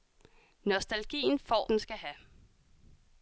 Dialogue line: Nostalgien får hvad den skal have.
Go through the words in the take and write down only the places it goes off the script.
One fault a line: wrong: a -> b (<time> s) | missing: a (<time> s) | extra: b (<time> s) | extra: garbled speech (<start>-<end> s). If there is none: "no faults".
missing: hvad (1.7 s)